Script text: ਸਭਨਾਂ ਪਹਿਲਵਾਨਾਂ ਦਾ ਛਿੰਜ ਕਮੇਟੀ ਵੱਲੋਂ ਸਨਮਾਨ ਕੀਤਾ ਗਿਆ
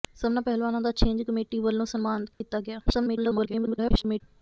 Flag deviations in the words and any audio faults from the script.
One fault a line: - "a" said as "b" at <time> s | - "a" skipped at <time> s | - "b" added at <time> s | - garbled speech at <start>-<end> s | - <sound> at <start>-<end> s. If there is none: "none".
- dropout at 2.3-2.4 s
- garbled speech at 2.9-4.2 s